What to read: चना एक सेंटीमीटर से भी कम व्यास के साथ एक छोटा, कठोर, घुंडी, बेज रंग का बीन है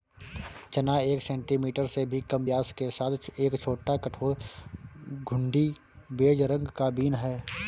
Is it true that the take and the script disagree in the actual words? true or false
false